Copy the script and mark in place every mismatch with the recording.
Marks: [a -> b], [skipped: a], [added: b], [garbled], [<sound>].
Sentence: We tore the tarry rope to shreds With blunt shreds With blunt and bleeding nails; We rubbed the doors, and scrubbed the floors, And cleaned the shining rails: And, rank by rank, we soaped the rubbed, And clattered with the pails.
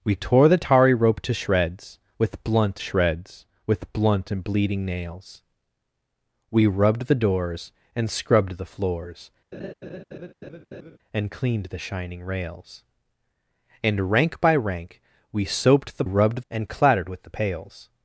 We tore the tarry rope to shreds With blunt shreds With blunt and bleeding nails; We rubbed the doors, and scrubbed the floors, [laugh] And cleaned the shining rails: And, rank by rank, we soaped the rubbed, And clattered with the pails.